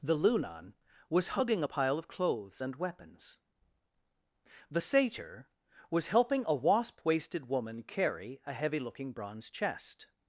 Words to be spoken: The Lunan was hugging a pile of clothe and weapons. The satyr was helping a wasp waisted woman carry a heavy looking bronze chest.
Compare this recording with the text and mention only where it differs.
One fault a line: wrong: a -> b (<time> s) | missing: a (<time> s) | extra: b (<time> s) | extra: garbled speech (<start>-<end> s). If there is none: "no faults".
wrong: clothe -> clothes (2.1 s)